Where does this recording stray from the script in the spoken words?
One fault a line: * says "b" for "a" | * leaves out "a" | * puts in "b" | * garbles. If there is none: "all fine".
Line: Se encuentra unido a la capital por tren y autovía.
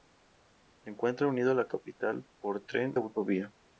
* leaves out "y"